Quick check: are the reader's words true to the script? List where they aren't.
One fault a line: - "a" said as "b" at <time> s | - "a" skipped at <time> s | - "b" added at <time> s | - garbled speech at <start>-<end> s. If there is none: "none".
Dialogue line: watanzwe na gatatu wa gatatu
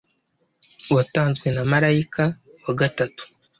- "gatatu" said as "marayika" at 1.7 s